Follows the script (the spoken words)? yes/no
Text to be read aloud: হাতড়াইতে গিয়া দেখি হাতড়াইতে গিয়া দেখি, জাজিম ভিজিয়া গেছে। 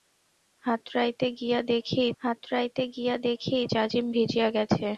yes